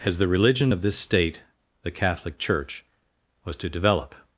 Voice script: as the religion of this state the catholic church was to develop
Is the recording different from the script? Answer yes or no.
no